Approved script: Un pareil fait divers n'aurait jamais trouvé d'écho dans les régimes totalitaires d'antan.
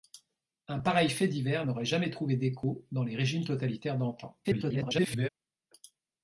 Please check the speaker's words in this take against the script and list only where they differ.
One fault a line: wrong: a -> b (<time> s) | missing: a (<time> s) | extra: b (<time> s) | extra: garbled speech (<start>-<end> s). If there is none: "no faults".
extra: garbled speech (4.4-5.3 s)